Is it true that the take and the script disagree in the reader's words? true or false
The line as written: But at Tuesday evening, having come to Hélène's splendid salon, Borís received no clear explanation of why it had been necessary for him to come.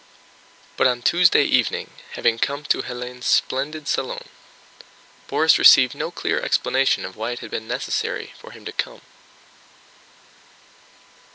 true